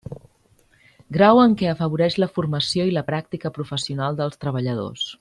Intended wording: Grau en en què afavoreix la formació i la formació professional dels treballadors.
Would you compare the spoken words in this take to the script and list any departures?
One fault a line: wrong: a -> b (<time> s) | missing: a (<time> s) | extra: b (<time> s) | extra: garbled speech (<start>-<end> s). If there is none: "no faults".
missing: en (1.5 s)
wrong: formació -> pràctica (3.1 s)